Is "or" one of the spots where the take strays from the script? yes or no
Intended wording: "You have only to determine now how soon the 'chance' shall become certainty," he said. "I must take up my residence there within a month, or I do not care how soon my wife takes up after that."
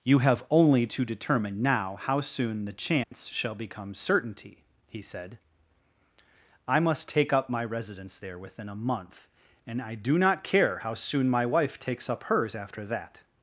yes